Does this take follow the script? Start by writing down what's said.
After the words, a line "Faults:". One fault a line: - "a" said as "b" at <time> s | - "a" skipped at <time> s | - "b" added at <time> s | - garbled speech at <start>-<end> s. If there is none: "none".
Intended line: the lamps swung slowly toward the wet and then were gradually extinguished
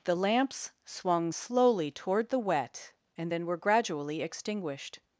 the lamps swung slowly toward the wet and then were gradually extinguished
Faults:
none